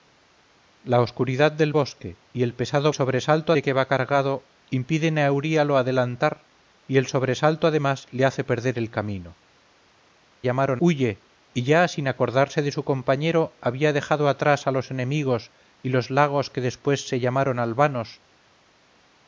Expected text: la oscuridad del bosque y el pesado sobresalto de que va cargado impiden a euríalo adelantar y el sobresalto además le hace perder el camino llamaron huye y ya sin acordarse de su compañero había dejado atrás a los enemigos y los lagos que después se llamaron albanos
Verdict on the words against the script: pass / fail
pass